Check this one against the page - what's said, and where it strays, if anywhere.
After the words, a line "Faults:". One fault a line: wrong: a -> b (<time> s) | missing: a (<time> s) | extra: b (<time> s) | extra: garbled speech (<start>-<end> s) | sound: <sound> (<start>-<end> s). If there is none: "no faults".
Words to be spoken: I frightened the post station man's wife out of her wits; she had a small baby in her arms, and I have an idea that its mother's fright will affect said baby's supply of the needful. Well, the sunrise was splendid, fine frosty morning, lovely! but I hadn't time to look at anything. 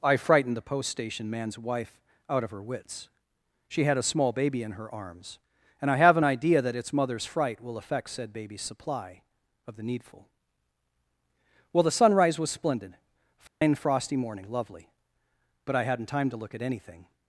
I frightened the post station man's wife out of her wits; she had a small baby in her arms, and I have an idea that its mother's fright will affect said baby's supply of the needful. Well, the sunrise was splendid, fine frosty morning, lovely! but I hadn't time to look at anything.
Faults:
sound: dropout (13.5-13.6 s)